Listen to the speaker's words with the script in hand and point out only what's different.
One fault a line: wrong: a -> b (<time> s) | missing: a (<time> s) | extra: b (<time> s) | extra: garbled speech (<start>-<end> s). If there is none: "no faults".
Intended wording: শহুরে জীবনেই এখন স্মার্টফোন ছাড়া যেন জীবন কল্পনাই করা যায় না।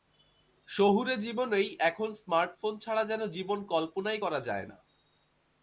no faults